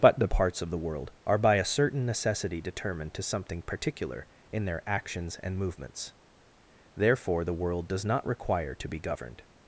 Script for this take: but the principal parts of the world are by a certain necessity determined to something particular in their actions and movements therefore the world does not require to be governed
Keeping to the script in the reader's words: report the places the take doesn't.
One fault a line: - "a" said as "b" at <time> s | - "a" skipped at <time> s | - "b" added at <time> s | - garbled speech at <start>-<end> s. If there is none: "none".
- "principal" skipped at 0.3 s